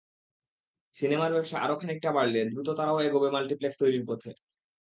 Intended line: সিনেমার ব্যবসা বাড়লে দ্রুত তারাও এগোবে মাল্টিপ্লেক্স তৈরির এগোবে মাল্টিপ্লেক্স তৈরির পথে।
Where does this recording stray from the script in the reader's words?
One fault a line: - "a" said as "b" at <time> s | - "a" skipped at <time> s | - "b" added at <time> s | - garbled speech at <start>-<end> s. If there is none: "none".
- "আরও খানিকটা" added at 1.6 s
- "এগোবে মাল্টিপ্লেক্স তৈরির" skipped at 4.0 s